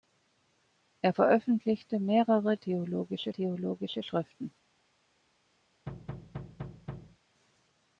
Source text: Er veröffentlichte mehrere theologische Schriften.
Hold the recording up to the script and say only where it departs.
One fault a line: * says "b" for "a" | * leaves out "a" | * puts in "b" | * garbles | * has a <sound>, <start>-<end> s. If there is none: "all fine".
* puts in "theologische"
* has a thud, 5.9-7.2 s